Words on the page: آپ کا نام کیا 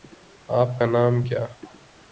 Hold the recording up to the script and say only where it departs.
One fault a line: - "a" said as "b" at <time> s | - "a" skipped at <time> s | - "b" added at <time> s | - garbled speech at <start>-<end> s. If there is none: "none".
none